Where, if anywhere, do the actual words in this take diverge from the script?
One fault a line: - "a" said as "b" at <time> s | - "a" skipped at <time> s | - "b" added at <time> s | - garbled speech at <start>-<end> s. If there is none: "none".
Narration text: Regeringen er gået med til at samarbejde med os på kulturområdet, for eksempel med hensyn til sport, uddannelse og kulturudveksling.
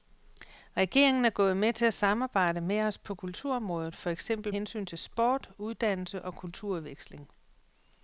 - "med" skipped at 4.5 s